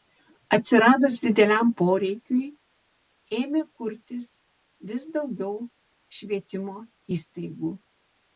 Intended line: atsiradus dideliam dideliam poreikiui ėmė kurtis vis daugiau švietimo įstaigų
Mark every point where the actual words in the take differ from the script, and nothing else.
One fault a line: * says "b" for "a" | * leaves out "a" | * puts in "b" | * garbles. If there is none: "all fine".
* leaves out "dideliam"